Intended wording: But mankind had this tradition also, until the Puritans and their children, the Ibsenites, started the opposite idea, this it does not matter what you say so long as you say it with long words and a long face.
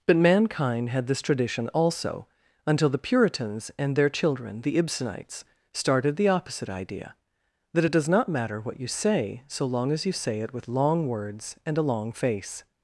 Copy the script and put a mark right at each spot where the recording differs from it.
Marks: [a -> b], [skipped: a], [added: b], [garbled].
But mankind had this tradition also, until the Puritans and their children, the Ibsenites, started the opposite idea, [this -> that] it does not matter what you say so long as you say it with long words and a long face.